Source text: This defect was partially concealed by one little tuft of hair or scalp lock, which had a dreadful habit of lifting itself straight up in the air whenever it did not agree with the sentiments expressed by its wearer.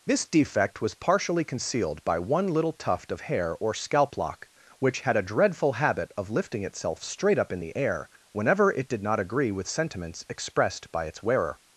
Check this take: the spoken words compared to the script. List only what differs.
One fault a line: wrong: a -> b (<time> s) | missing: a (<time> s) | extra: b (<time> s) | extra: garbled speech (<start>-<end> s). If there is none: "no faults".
missing: the (9.7 s)